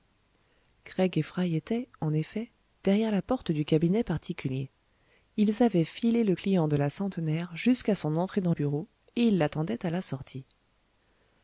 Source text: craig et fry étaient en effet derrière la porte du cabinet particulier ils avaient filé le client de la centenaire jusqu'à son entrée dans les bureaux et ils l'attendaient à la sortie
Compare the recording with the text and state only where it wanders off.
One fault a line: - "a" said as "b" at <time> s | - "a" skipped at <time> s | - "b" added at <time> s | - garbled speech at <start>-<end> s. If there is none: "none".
- "les" skipped at 8.5 s